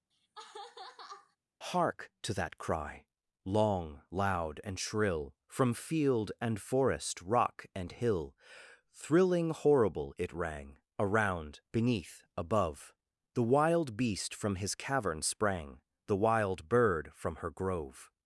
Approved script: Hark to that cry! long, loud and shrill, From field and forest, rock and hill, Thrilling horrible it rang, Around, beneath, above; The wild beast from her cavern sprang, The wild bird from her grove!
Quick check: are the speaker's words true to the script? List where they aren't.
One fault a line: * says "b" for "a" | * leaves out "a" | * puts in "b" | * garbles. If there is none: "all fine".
* says "his" for "her"